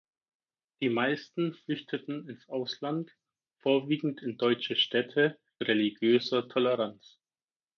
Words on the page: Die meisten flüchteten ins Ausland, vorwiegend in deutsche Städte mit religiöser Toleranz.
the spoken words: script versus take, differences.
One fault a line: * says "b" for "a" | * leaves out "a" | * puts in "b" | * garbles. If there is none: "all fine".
* leaves out "mit"